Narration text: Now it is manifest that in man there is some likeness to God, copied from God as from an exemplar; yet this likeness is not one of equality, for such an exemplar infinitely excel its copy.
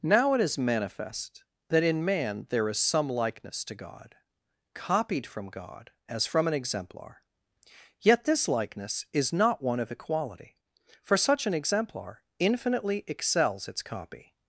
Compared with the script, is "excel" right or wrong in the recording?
wrong